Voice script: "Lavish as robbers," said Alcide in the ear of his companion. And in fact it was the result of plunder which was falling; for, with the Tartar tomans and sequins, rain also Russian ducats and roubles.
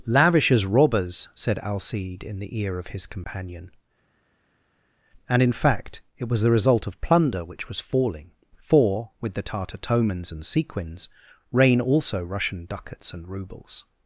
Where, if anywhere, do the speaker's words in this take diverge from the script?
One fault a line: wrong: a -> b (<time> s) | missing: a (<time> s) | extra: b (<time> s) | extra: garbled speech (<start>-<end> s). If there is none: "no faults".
no faults